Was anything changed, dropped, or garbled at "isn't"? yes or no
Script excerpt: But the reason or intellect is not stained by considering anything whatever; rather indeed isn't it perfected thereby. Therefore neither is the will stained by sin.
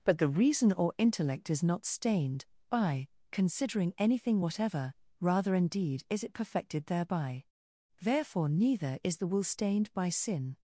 yes